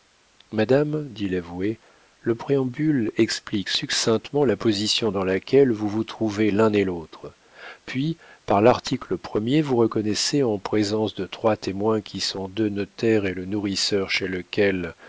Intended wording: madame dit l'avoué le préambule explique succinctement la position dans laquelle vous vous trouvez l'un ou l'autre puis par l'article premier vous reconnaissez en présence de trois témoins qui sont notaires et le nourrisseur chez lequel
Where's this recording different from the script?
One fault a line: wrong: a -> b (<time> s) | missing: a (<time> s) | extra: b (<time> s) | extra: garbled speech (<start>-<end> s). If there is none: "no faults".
wrong: ou -> et (6.7 s)
extra: deux (12.5 s)